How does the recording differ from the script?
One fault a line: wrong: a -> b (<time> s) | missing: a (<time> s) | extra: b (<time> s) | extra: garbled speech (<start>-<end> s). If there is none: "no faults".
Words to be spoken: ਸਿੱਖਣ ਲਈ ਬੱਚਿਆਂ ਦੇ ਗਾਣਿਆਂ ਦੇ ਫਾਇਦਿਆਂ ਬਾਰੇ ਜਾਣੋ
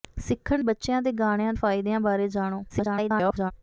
missing: ਲਈ (0.6 s)
missing: ਦੇ (1.5 s)
extra: garbled speech (2.7-3.5 s)